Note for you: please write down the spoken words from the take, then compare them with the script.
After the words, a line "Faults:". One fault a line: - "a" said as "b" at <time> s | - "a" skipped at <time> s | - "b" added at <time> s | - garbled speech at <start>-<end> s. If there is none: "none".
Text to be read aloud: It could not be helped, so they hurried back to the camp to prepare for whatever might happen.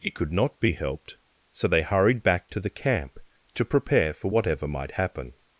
It could not be helped, so they hurried back to the camp to prepare for whatever might happen.
Faults:
none